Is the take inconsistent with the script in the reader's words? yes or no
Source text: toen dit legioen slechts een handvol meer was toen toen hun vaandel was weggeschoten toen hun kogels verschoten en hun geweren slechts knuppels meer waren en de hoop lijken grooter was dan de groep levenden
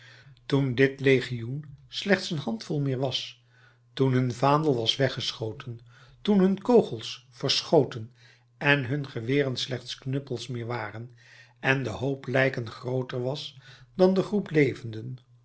yes